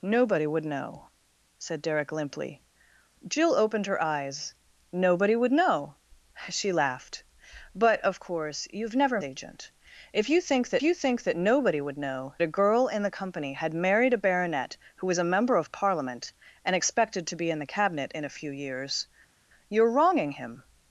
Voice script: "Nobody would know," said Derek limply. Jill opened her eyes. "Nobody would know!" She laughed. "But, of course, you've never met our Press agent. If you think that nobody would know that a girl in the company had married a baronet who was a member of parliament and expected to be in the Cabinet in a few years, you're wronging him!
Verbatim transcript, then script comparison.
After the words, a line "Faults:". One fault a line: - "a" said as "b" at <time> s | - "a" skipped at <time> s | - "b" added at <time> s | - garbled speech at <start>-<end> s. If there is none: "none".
"Nobody would know," said Derek limply. Jill opened her eyes. "Nobody would know!" She laughed. "But, of course, you've never agent. If you think that you think that nobody would know a girl in the company had married a baronet who was a member of parliament and expected to be in the Cabinet in a few years, you're wronging him!
Faults:
- "met our Press agent If" said as "agent If you think that" at 9.2 s
- "that" skipped at 12.3 s